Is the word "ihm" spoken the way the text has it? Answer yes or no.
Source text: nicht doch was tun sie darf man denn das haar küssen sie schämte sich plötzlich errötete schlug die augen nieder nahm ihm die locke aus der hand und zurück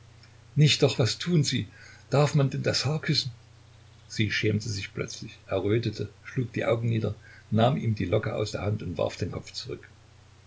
yes